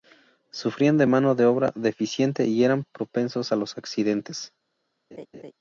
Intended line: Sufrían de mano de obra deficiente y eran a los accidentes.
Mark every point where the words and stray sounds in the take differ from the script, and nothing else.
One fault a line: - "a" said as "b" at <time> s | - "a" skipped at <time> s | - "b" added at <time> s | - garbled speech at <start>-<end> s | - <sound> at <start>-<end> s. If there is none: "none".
- "propensos" added at 2.9 s
- laugh at 5.1-5.5 s